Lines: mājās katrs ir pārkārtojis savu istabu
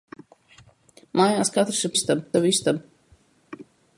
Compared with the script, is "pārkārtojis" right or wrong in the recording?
wrong